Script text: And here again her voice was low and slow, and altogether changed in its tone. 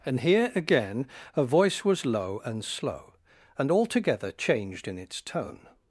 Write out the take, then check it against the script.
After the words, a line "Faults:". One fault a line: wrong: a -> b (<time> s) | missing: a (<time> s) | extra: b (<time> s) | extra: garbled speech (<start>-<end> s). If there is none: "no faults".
And here again her voice was low and slow, and altogether changed in its tone.
Faults:
no faults